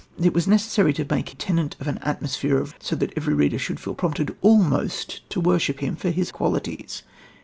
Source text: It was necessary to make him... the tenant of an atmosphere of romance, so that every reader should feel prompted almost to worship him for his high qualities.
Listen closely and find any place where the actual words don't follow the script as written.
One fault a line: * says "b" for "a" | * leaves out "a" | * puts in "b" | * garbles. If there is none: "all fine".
* leaves out "him the"
* leaves out "romance"
* leaves out "high"